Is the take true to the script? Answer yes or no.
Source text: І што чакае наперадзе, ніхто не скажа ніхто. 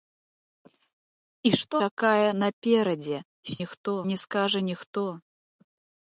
yes